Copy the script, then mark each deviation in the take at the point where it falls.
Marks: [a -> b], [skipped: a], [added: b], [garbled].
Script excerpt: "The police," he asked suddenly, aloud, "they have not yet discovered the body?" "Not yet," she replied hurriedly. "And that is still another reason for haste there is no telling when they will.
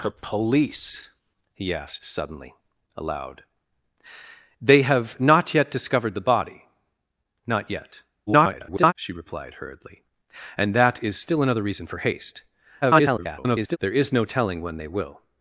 "The police," he asked suddenly, aloud, "they have not yet discovered the body?" "Not yet," [garbled] she replied hurriedly. "And that is still another reason for haste [garbled] there is no telling when they will.